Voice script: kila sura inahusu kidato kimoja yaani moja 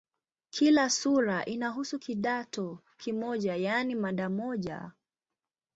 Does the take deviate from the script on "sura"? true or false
false